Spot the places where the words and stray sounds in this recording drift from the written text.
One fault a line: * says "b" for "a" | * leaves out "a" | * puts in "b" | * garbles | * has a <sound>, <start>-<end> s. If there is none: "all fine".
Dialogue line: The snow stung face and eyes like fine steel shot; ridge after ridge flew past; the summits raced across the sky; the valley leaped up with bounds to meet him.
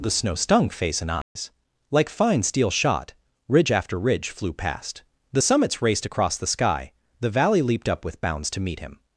* has a dropout, 1.2-1.4 s